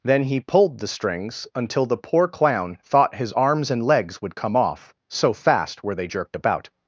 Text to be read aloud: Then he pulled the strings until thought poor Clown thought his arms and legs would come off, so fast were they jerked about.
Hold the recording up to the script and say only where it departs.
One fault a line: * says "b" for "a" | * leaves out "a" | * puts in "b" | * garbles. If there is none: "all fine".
* says "the" for "thought"